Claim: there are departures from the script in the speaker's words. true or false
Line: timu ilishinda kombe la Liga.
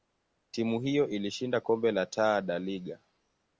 true